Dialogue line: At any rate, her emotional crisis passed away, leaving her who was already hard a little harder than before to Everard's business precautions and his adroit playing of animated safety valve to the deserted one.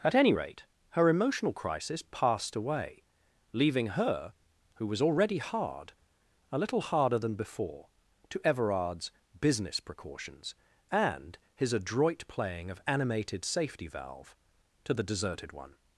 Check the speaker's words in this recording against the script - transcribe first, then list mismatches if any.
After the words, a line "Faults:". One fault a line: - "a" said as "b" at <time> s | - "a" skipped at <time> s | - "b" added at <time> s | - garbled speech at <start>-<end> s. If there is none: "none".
At any rate, her emotional crisis passed away, leaving her who was already hard a little harder than before to Everard's business precautions and his adroit playing of animated safety valve to the deserted one.
Faults:
none